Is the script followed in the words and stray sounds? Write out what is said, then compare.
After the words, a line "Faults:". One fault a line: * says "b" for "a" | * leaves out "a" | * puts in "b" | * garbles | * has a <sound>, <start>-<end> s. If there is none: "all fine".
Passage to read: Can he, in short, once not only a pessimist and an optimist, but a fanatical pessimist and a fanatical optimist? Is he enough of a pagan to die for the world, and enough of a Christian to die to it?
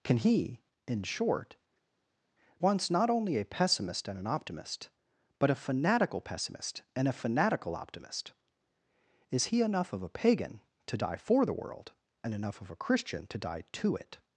Can he, in short, once not only a pessimist and an optimist, but a fanatical pessimist and a fanatical optimist? Is he enough of a pagan to die for the world, and enough of a Christian to die to it?
Faults:
all fine